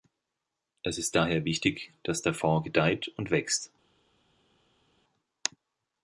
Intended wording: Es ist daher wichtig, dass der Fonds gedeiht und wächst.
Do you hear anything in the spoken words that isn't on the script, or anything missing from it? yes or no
no